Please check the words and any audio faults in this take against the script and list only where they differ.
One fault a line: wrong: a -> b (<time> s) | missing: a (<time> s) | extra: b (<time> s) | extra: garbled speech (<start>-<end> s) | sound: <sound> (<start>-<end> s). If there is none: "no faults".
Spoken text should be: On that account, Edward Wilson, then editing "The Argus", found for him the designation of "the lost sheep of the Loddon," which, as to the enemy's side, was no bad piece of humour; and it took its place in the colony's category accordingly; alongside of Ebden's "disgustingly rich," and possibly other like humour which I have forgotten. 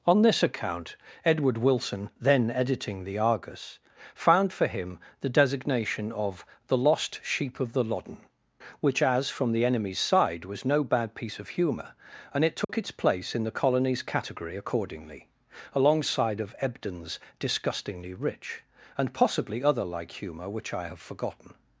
wrong: that -> this (0.2 s)
wrong: to -> from (9.3 s)
sound: dropout (12.6-12.7 s)